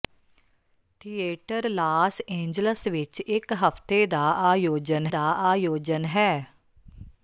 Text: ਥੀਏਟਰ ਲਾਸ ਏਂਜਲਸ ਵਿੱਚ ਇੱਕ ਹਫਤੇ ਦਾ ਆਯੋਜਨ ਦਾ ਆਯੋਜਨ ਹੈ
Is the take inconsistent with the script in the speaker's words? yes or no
no